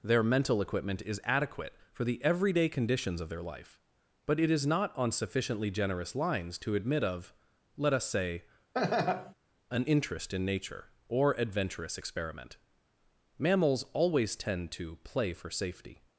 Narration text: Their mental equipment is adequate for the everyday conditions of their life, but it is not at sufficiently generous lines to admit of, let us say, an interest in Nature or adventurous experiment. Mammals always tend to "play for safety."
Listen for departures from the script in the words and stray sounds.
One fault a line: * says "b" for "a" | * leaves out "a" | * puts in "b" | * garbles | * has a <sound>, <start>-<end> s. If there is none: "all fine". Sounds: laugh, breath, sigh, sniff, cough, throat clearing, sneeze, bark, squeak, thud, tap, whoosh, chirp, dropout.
* says "on" for "at"
* has a laugh, 8.7-9.3 s